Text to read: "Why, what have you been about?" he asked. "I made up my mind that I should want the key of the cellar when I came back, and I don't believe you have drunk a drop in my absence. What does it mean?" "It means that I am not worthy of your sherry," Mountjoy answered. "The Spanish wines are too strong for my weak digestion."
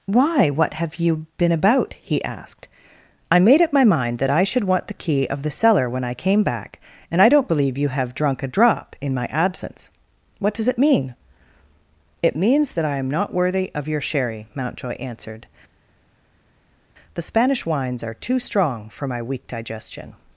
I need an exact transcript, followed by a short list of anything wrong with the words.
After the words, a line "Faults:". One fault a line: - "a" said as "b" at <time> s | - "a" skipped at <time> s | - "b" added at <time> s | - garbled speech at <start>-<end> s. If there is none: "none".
"Why, what have you been about?" he asked. "I made up my mind that I should want the key of the cellar when I came back, and I don't believe you have drunk a drop in my absence. What does it mean?" "It means that I am not worthy of your sherry," Mountjoy answered. "The Spanish wines are too strong for my weak digestion."
Faults:
none